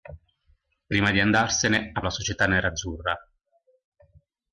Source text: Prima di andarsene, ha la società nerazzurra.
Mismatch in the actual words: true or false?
false